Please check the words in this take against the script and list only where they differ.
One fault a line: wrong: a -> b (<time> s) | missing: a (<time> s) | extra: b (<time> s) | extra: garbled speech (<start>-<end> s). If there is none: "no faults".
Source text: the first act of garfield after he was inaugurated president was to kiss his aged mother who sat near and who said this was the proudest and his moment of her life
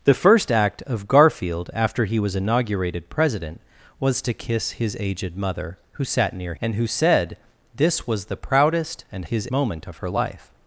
no faults